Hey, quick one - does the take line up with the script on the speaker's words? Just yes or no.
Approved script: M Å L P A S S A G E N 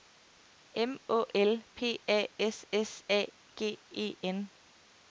yes